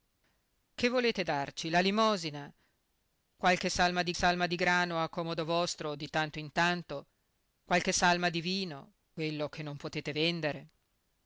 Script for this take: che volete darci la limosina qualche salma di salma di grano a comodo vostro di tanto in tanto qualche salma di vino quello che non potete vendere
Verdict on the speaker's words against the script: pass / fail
pass